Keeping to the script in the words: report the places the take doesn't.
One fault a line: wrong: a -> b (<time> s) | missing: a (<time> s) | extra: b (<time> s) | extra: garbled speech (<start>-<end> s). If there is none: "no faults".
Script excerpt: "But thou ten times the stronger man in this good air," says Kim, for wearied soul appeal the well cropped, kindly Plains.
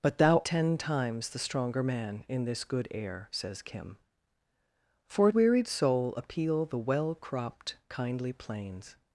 no faults